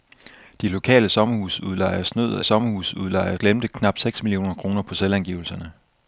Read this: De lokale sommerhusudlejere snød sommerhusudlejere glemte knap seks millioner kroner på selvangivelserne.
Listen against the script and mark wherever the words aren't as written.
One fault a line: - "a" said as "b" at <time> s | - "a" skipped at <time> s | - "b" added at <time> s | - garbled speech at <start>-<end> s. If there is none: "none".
none